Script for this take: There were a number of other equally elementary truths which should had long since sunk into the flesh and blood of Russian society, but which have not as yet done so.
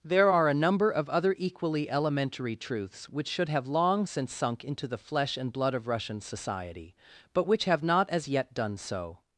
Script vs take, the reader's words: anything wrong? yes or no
yes